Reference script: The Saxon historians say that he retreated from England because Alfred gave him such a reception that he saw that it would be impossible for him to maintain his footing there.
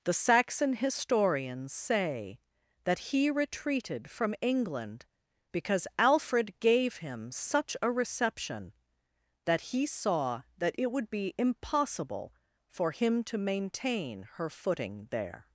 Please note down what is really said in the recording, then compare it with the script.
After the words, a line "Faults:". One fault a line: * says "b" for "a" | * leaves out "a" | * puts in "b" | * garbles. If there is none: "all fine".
The Saxon historians say that he retreated from England because Alfred gave him such a reception that he saw that it would be impossible for him to maintain her footing there.
Faults:
* says "her" for "his"